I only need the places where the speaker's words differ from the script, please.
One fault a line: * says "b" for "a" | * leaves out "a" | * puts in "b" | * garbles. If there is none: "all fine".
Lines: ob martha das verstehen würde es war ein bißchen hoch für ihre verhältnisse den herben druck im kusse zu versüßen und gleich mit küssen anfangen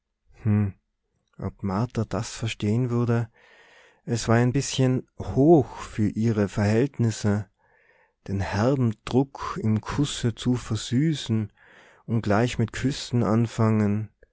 all fine